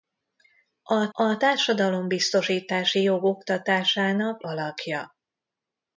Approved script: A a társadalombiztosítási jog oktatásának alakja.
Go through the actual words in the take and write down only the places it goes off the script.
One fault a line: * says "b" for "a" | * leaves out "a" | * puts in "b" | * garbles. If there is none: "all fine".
all fine